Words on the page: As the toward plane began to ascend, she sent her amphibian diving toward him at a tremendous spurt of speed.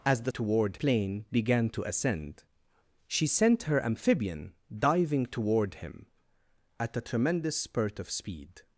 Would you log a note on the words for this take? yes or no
no